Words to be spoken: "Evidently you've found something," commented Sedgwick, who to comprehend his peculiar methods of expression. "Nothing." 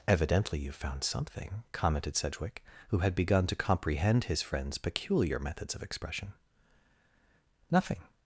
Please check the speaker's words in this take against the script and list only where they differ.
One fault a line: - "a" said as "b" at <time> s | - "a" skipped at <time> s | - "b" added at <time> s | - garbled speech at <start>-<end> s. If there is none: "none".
- "had begun" added at 3.0 s
- "friend's" added at 4.4 s